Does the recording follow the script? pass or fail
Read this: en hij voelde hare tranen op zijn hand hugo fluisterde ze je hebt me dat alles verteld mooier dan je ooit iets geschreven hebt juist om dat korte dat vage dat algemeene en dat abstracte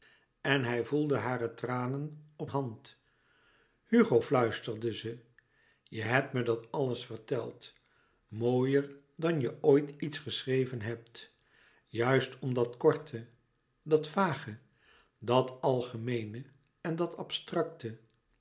fail